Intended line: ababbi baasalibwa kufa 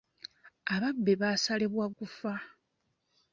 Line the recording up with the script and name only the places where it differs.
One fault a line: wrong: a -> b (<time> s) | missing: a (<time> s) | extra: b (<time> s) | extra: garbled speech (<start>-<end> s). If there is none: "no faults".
no faults